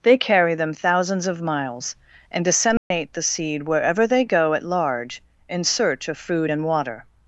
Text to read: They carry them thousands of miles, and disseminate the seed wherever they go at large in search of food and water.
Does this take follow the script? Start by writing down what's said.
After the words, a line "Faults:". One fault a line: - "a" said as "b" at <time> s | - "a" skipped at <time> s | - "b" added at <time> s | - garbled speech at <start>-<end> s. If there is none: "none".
They carry them thousands of miles, and disseminate the seed wherever they go at large in search of food and water.
Faults:
none